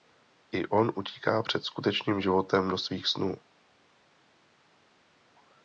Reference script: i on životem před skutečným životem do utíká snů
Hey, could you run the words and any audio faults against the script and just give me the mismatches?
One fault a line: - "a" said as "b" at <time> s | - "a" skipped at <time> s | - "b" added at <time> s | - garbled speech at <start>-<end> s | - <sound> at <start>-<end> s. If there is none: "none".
- "životem" said as "utíká" at 0.9 s
- "utíká" said as "svých" at 2.8 s